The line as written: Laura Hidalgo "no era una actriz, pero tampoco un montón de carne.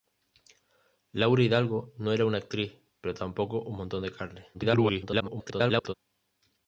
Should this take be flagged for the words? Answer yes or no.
yes